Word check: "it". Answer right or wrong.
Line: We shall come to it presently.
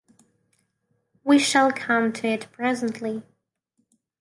right